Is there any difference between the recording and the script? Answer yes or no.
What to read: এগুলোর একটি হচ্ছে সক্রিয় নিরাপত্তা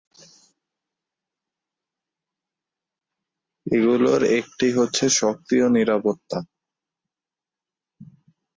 no